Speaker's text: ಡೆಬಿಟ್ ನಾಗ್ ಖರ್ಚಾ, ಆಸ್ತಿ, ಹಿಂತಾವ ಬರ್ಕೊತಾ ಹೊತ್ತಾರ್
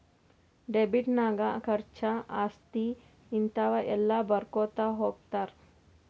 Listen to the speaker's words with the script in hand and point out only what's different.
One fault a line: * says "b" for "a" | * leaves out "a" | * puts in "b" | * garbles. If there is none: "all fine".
* puts in "ಎಲ್ಲ"